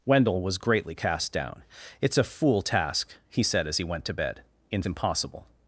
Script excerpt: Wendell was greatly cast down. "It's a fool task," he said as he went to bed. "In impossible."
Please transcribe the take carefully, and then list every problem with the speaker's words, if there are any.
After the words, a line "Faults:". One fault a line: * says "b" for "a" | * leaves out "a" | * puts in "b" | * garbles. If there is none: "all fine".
Wendell was greatly cast down. "It's a fool task," he said as he went to bed. "In impossible."
Faults:
all fine